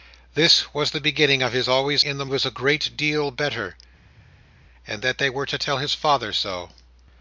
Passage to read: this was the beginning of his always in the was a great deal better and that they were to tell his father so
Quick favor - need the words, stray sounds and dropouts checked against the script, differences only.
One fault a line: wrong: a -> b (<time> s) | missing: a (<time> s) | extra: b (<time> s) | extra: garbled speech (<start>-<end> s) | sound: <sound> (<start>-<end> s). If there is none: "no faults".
no faults